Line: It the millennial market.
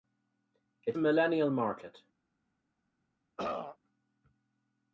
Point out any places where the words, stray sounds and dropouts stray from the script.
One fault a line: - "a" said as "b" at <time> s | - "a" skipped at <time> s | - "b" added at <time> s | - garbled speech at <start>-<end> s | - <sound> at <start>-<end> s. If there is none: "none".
- throat clearing at 3.4-3.8 s